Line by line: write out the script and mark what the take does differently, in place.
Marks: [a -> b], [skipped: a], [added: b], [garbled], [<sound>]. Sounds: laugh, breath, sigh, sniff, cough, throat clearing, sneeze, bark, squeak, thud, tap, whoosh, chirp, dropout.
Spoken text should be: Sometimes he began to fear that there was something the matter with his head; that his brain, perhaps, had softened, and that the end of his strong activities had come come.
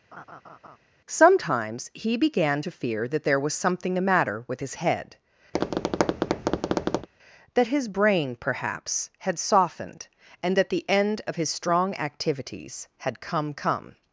[laugh] Sometimes he began to fear that there was something the matter with his head; [tap] that his brain, perhaps, had softened, and that the end of his strong activities had come come.